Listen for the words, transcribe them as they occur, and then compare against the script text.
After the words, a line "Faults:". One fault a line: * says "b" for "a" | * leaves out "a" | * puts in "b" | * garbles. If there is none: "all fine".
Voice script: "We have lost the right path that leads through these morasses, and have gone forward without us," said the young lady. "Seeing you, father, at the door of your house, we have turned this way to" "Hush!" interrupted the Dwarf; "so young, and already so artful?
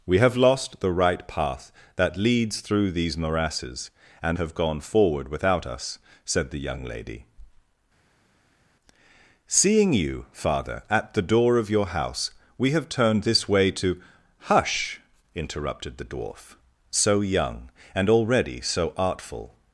"We have lost the right path that leads through these morasses, and have gone forward without us," said the young lady. "Seeing you, father, at the door of your house, we have turned this way to" "Hush!" interrupted the Dwarf; "so young, and already so artful?
Faults:
all fine